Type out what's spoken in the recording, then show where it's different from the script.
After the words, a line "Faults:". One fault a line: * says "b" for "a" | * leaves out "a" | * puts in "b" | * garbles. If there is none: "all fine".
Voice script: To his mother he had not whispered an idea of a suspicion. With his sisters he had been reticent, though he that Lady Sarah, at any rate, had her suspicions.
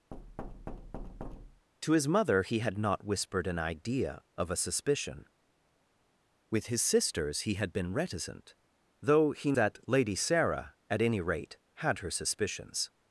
To his mother he had not whispered an idea of a suspicion. With his sisters he had been reticent, though he that Lady Sarah, at any rate, had her suspicions.
Faults:
all fine